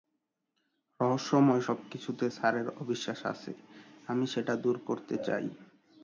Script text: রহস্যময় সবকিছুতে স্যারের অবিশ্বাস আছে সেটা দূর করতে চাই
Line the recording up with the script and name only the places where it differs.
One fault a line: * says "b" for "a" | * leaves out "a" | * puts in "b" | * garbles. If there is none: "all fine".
* puts in "আমি"